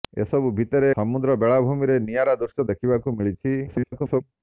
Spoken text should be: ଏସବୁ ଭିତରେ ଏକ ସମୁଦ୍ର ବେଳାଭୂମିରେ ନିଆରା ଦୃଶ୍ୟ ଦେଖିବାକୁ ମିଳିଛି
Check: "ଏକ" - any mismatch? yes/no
yes